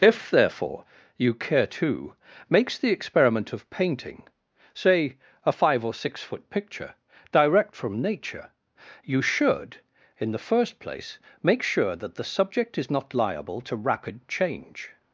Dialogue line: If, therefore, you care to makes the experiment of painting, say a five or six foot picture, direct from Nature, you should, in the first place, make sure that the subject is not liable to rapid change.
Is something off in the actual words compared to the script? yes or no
no